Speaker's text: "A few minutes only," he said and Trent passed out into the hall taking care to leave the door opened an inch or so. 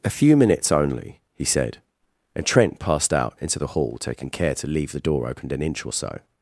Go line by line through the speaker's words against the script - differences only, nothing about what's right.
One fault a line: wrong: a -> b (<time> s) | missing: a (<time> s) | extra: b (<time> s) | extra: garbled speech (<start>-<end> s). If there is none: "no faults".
no faults